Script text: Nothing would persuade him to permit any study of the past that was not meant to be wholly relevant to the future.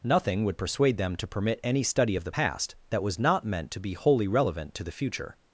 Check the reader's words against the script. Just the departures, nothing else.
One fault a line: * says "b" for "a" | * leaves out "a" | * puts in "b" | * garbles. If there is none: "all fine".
* says "them" for "him"